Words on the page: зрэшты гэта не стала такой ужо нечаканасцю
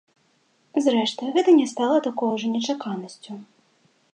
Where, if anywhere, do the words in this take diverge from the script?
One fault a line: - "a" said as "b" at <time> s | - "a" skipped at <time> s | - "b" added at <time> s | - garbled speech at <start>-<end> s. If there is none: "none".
none